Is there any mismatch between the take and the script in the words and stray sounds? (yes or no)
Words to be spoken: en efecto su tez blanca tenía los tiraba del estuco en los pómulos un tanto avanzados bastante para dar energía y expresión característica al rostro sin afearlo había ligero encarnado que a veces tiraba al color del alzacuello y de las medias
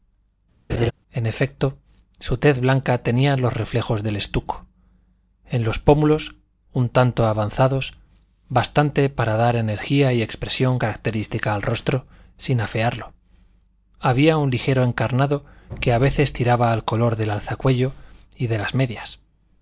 yes